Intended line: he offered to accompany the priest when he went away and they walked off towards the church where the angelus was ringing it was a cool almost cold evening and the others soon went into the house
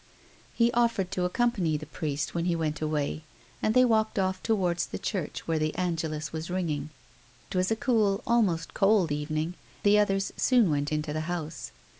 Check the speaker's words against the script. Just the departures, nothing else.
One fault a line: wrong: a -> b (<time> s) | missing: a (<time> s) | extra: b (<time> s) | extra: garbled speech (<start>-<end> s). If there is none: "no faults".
missing: it (6.9 s)
missing: and (9.6 s)